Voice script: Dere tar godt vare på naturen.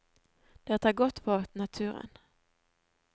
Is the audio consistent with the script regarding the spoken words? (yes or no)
no